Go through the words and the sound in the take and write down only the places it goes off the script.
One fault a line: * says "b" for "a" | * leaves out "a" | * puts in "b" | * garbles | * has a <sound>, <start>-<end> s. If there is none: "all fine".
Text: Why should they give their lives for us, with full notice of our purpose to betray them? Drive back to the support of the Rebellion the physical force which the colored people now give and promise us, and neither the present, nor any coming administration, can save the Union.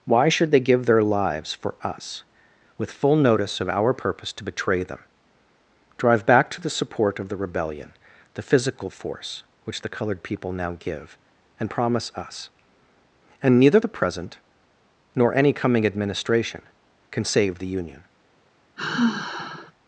* has a sigh, 18.8-19.7 s